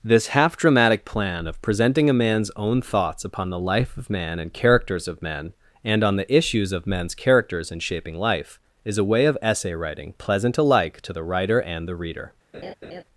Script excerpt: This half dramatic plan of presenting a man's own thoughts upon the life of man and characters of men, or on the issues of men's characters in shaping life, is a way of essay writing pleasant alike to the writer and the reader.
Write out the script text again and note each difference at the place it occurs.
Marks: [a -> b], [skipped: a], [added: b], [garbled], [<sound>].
This half dramatic plan of presenting a man's own thoughts upon the life of man and characters of men, [or -> and] on the issues of men's characters in shaping life, is a way of essay writing pleasant alike to the writer and the reader. [laugh]